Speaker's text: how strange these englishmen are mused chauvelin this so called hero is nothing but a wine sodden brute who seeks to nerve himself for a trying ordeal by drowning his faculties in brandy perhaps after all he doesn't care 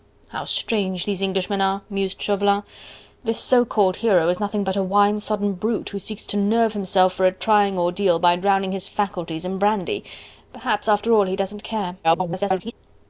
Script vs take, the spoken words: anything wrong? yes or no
yes